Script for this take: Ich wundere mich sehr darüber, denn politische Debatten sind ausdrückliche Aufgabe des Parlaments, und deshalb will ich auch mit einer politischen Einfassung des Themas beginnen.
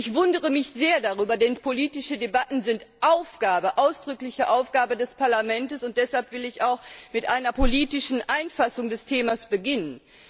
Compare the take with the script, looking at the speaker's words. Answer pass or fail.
pass